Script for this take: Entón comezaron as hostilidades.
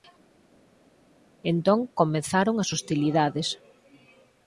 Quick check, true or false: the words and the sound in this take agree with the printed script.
true